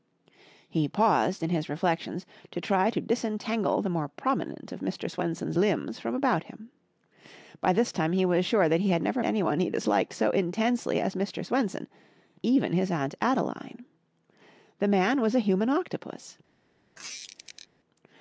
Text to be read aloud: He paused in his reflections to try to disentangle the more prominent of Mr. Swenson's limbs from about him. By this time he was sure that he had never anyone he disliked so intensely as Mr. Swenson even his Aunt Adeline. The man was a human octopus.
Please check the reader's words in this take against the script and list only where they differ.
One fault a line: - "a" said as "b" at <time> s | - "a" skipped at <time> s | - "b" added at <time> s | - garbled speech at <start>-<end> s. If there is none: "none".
none